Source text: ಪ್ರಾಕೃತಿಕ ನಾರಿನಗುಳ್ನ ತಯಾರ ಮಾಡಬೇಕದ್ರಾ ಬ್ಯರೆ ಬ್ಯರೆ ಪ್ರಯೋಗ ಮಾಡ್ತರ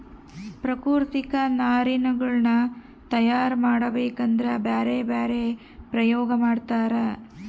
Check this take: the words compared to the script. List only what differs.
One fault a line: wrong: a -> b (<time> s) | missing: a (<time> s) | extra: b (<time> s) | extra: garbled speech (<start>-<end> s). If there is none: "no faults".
no faults